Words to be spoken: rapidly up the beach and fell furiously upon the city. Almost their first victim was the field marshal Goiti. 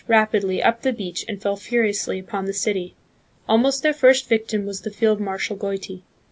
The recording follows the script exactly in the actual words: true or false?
true